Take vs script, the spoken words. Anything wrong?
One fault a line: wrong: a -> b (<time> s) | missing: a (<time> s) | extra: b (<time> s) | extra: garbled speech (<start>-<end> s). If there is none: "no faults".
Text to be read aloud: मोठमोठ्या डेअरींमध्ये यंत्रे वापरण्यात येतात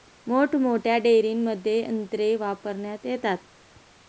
no faults